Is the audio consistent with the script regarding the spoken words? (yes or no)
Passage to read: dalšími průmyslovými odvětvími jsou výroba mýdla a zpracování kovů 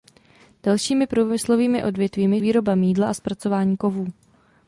no